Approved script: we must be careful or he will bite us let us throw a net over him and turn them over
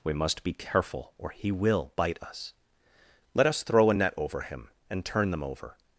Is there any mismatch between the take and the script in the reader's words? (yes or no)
no